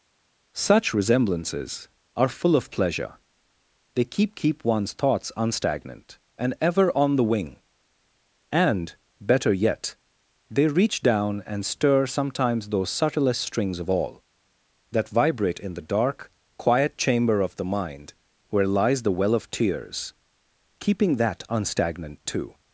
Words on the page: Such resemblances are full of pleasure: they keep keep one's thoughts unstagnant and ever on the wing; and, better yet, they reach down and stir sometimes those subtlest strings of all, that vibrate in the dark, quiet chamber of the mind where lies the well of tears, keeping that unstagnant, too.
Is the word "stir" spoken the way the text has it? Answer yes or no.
yes